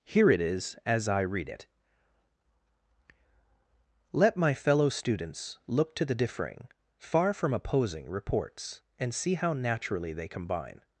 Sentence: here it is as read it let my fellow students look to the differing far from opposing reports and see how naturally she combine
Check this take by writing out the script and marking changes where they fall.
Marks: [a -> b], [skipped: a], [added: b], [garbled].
here it is as [added: i] read it let my fellow students look to the differing far from opposing reports and see how naturally [she -> they] combine